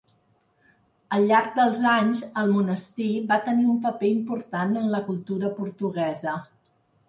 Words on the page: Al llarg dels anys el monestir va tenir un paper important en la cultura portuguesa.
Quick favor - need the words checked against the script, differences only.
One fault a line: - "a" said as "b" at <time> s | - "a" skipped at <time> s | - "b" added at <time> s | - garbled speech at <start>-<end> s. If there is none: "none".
none